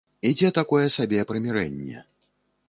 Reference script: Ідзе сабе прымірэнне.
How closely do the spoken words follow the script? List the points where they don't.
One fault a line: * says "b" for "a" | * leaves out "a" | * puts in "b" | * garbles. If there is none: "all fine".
* puts in "такое"